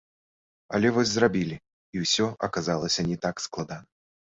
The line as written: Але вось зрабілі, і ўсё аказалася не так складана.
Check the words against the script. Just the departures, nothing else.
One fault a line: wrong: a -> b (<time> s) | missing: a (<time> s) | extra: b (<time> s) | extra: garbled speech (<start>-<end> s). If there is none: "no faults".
no faults